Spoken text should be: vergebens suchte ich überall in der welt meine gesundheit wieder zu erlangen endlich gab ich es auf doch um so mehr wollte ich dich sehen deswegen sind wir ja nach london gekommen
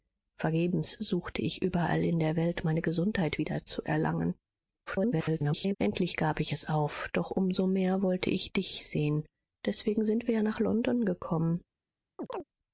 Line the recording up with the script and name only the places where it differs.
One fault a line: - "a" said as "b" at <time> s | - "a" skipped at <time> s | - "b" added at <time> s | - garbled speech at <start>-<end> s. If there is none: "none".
- garbled speech at 4.9-5.8 s